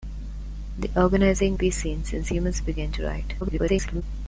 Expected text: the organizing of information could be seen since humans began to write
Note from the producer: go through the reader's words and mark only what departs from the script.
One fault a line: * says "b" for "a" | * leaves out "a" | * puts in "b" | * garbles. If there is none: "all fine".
* leaves out "of information could"
* garbles